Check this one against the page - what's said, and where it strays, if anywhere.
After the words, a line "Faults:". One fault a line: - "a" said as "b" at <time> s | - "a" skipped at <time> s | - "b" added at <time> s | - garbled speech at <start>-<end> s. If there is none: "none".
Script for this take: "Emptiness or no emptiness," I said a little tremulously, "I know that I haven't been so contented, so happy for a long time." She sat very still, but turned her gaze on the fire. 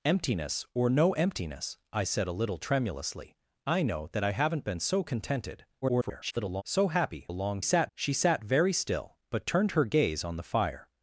"Emptiness or no emptiness," I said a little tremulously, "I know that I haven't been so contented, [garbled] so happy a long sat." She sat very still, but turned her gaze on the fire.
Faults:
- garbled speech at 5.8-6.6 s
- "for" skipped at 7.3 s
- "time" said as "sat" at 7.6 s